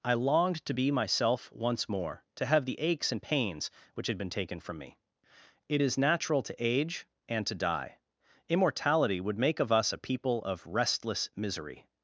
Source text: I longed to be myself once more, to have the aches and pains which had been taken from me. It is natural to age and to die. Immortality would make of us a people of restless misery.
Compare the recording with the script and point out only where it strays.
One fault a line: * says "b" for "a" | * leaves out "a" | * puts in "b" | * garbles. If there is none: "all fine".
all fine